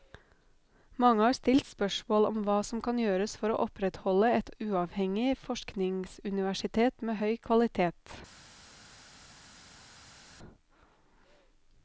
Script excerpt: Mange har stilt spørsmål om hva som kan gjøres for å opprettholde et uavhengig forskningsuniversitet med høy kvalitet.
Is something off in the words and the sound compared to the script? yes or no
no